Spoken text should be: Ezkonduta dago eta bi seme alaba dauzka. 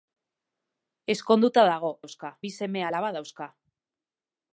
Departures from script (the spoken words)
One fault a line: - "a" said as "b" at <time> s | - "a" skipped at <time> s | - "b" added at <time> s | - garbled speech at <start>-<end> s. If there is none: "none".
- "eta" said as "dauzka" at 2.0 s